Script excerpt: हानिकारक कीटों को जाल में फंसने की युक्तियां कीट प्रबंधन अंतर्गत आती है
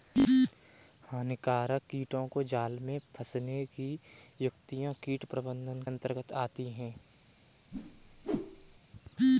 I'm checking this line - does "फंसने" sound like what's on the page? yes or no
yes